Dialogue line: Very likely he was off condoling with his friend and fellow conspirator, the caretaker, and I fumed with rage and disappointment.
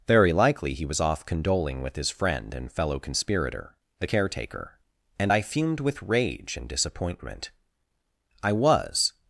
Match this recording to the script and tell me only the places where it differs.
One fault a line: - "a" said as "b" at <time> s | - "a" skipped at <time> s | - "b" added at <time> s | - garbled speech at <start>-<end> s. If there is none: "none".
- "I was" added at 8.4 s